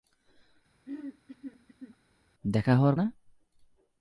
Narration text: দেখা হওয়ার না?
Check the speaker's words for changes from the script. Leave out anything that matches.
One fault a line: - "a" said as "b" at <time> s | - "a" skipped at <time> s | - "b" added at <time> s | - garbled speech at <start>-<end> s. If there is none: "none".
none